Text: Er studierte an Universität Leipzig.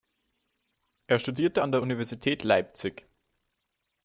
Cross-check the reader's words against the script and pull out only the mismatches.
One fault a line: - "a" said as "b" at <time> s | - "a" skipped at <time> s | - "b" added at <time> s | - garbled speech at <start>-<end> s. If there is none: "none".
- "der" added at 1.7 s